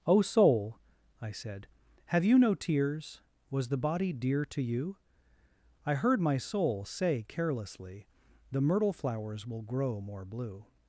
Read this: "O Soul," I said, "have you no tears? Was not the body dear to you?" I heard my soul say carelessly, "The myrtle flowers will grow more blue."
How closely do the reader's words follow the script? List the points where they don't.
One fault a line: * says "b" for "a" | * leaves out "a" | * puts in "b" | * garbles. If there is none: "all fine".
* leaves out "not"